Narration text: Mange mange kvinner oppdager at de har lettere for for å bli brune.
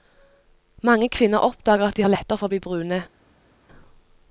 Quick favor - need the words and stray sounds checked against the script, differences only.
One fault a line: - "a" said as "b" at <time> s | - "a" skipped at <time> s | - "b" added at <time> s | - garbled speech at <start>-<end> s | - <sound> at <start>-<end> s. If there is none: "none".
- "mange" skipped at 1.1 s
- "for" skipped at 2.5 s